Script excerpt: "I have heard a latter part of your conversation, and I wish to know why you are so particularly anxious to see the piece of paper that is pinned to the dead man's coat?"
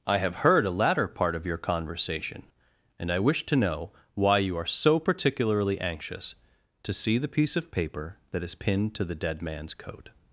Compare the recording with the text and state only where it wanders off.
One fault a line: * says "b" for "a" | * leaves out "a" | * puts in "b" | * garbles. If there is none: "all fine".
all fine